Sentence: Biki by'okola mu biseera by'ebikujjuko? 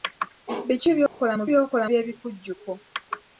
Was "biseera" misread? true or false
true